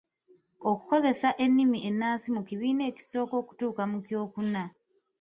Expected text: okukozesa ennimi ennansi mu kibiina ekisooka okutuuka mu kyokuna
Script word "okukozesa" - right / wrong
right